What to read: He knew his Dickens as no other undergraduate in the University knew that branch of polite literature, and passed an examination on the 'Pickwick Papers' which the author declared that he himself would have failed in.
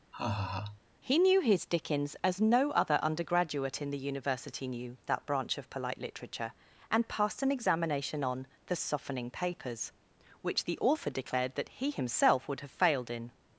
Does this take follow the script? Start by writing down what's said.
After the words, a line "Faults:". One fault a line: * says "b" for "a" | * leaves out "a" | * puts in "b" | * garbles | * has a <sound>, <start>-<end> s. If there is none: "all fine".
He knew his Dickens as no other undergraduate in the University knew that branch of polite literature, and passed an examination on the 'Softening Papers' which the author declared that he himself would have failed in.
Faults:
* has a laugh, 0.1-0.8 s
* says "Softening" for "Pickwick"